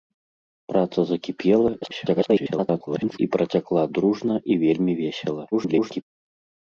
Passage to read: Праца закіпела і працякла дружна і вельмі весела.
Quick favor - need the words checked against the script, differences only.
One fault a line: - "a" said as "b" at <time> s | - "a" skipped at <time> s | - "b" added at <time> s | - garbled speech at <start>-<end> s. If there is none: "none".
- garbled speech at 1.8-3.2 s
- garbled speech at 5.5-6.0 s